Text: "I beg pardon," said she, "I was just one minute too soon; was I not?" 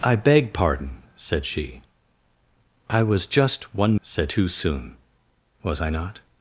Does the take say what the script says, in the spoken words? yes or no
no